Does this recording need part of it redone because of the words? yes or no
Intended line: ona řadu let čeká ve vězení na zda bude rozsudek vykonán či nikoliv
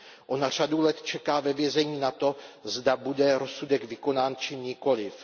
yes